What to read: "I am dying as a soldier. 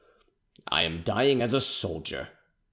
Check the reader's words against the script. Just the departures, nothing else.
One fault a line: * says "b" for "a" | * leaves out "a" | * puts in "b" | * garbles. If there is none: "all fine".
all fine